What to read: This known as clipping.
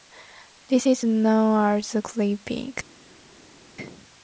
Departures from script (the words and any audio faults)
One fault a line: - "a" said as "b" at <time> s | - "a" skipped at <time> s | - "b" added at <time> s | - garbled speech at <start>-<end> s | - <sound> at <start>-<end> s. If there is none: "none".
- "is" added at 0.8 s